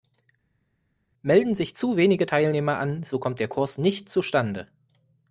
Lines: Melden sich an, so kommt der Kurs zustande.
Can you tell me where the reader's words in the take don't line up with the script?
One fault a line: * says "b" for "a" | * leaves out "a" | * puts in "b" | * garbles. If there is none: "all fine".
* puts in "zu wenige Teilnehmer"
* puts in "nicht"